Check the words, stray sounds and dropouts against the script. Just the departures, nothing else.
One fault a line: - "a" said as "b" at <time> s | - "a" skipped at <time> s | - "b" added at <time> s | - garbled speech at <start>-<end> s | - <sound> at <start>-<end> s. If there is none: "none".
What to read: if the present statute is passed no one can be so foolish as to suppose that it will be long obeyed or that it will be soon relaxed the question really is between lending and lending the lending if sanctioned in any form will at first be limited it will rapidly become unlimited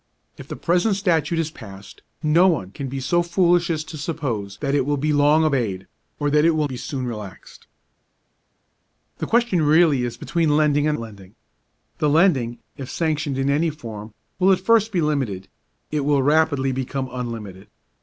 none